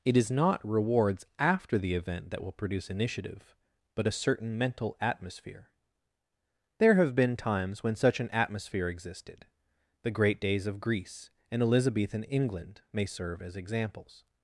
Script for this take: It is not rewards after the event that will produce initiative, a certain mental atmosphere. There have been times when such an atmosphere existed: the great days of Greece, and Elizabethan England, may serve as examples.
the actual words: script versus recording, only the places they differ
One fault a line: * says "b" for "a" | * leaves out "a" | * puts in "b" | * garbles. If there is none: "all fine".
* puts in "but"